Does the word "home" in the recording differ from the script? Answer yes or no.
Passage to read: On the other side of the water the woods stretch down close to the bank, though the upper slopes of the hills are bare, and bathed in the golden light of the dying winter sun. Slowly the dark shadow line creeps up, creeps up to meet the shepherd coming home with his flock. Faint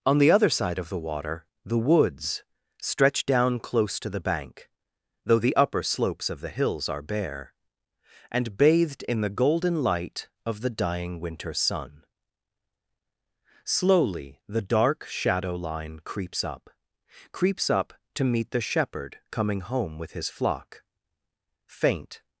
no